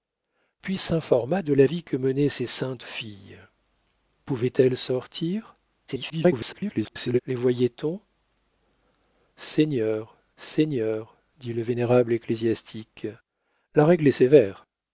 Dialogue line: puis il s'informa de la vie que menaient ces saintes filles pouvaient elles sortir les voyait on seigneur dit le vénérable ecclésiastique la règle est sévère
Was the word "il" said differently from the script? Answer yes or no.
yes